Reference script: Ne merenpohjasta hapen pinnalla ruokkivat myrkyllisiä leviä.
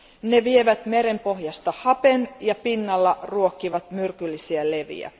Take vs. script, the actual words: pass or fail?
fail